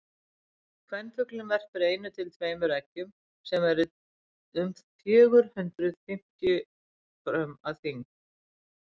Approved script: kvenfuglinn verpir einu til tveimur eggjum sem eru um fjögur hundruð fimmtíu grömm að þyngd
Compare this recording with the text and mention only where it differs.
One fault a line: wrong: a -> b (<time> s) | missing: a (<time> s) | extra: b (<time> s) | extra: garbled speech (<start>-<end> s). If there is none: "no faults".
no faults